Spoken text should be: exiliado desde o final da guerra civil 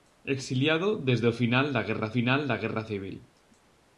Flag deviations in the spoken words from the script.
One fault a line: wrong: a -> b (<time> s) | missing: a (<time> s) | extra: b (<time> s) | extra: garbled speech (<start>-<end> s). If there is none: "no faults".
extra: final da guerra (2.2 s)